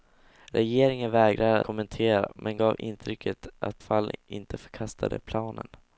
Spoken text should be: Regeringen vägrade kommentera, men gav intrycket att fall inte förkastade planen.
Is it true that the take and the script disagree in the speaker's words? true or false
false